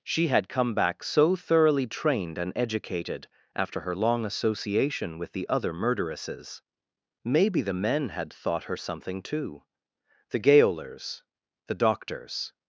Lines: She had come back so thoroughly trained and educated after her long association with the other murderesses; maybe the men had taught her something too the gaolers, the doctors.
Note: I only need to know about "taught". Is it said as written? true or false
false